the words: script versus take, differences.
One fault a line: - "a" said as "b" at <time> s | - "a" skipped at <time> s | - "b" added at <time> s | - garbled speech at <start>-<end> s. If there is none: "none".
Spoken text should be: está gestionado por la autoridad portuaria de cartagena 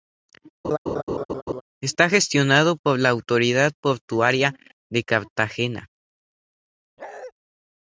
none